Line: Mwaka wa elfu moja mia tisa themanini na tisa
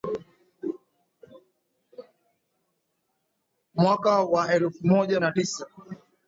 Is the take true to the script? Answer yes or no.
no